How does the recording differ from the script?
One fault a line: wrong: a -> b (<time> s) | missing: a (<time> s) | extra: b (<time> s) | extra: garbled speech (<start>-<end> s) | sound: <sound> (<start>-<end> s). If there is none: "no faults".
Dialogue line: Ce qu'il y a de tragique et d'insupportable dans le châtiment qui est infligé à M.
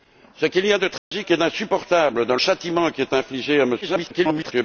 sound: dropout (1.0-1.1 s)
missing: le (2.4 s)
extra: garbled speech (3.8-4.5 s)